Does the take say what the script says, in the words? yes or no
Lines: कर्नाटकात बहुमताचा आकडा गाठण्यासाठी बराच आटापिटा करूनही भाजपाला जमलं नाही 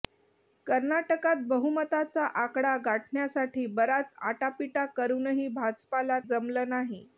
yes